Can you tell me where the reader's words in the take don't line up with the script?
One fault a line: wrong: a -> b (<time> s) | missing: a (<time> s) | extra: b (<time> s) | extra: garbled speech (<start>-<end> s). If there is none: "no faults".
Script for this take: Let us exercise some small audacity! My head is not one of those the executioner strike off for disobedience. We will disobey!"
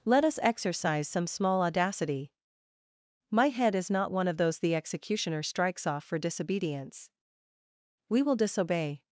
wrong: strike -> strikes (5.4 s)